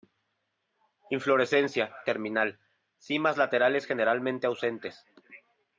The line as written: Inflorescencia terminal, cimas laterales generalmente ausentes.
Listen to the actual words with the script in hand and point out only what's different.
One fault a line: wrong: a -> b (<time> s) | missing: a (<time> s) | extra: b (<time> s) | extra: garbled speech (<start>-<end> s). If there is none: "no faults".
no faults